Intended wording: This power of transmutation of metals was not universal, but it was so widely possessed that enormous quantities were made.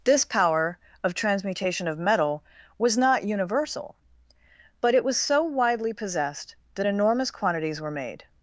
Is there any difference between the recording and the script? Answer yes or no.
yes